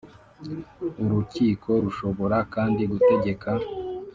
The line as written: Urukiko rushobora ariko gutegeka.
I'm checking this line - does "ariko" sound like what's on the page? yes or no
no